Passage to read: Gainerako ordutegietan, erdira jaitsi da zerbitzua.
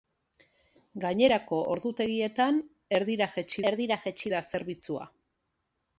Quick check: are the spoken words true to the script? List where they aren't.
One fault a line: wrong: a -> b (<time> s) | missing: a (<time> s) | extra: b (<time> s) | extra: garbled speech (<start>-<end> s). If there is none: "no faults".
extra: erdira jaitsi (3.7 s)